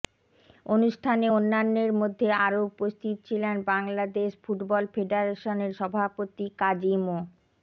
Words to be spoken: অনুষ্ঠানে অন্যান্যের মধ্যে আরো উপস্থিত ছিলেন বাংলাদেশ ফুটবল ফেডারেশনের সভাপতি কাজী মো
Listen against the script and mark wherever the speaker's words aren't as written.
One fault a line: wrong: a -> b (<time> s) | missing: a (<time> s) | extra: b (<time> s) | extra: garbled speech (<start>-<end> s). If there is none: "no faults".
no faults